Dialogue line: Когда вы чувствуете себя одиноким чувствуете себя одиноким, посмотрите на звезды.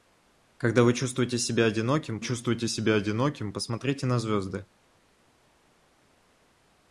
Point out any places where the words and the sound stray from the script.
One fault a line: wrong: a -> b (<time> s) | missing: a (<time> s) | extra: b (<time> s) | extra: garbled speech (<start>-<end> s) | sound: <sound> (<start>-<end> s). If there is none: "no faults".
no faults